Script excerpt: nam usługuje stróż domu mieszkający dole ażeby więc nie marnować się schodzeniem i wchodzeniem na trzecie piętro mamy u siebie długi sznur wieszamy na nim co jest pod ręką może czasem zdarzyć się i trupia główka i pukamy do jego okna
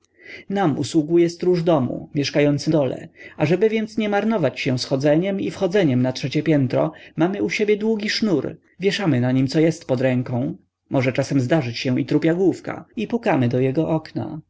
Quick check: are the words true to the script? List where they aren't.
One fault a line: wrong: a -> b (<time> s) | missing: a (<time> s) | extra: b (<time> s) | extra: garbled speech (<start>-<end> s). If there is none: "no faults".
no faults